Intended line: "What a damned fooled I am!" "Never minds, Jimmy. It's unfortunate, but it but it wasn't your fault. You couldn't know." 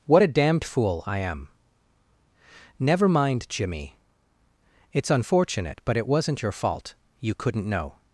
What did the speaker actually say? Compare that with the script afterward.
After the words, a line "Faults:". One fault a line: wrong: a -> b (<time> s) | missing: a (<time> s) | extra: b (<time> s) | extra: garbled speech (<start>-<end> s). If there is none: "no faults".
"What a damned fool I am!" "Never mind, Jimmy. It's unfortunate, but it wasn't your fault. You couldn't know."
Faults:
wrong: fooled -> fool (0.6 s)
wrong: minds -> mind (3.1 s)
missing: but it (6.1 s)